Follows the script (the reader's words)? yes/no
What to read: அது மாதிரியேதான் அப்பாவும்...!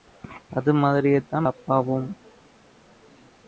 yes